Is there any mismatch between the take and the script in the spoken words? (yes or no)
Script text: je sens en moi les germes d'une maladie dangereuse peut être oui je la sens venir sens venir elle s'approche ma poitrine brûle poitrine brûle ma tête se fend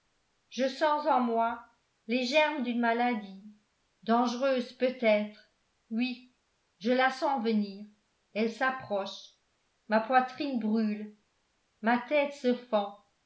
yes